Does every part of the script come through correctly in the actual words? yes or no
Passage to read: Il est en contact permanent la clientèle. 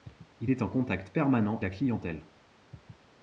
yes